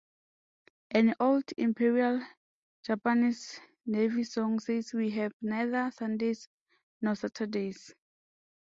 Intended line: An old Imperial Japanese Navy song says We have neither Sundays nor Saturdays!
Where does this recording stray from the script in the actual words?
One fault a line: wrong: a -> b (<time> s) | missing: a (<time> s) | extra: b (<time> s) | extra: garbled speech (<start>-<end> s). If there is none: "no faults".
no faults